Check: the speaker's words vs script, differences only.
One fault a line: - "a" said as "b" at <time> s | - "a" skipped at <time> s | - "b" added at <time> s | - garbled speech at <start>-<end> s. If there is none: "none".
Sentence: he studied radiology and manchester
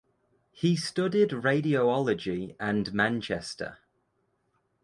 none